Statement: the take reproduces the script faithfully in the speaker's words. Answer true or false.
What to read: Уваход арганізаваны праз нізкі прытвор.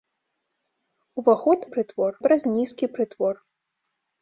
false